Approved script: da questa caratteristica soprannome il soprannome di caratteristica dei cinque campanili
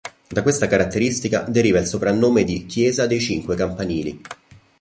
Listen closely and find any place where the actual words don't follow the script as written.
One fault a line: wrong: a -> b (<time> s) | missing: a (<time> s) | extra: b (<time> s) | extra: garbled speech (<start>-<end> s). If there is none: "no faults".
wrong: soprannome -> deriva (1.5 s)
wrong: caratteristica -> chiesa (2.6 s)